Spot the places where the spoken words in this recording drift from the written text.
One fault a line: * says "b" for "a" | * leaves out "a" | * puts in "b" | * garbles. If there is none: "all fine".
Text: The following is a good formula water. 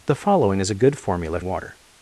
all fine